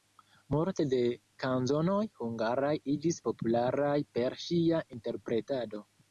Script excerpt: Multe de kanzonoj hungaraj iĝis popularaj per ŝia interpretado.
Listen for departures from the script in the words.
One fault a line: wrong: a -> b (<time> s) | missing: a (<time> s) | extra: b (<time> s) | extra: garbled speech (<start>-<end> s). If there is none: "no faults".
no faults